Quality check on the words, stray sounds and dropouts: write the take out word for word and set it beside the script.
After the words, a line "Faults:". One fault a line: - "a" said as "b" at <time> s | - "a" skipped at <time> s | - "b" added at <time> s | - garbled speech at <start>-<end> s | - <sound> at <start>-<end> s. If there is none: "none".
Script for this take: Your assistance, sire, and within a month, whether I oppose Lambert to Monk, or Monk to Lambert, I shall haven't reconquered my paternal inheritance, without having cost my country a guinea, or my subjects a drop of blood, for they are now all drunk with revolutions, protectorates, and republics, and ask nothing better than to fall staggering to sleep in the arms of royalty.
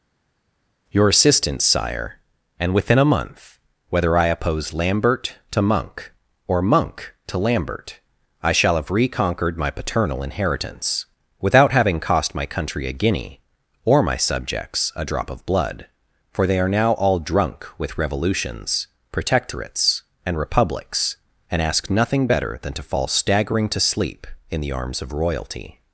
Your assistance, sire, and within a month, whether I oppose Lambert to Monk, or Monk to Lambert, I shall have reconquered my paternal inheritance, without having cost my country a guinea, or my subjects a drop of blood, for they are now all drunk with revolutions, protectorates, and republics, and ask nothing better than to fall staggering to sleep in the arms of royalty.
Faults:
- "haven't" said as "have" at 8.8 s